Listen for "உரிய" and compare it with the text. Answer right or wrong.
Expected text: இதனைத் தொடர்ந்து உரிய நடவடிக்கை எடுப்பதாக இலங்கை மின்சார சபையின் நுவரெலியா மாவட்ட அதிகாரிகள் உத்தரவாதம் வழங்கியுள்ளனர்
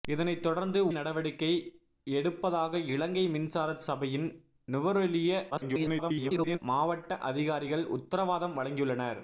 wrong